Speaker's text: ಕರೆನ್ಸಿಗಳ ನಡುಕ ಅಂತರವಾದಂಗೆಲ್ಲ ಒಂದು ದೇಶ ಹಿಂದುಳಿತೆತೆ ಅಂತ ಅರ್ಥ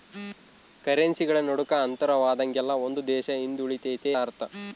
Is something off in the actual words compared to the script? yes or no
yes